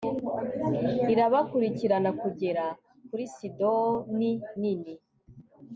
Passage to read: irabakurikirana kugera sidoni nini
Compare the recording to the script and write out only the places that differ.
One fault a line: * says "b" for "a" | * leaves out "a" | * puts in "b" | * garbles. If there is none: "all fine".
* puts in "kuri"